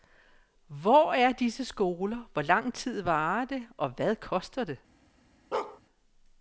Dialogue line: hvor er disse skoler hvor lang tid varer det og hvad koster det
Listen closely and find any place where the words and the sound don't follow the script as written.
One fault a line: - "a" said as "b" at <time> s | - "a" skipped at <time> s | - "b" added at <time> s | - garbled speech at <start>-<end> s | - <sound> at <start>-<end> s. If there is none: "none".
- bark at 5.5-5.8 s